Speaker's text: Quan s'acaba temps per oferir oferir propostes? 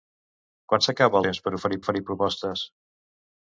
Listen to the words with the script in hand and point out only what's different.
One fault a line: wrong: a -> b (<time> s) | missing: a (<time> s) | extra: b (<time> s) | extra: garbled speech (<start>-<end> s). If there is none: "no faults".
no faults